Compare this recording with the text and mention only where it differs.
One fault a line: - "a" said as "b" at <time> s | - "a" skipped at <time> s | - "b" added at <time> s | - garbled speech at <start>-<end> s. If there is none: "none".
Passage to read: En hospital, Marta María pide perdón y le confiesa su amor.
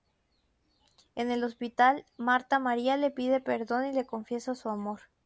- "el" added at 1.3 s
- "le" added at 3.0 s